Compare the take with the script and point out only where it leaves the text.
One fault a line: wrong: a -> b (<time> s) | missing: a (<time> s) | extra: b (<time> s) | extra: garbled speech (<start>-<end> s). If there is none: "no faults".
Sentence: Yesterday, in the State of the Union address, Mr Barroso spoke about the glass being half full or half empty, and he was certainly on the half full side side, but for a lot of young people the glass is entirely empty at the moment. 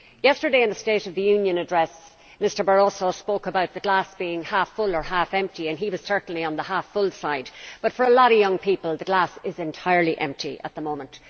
missing: side (7.5 s)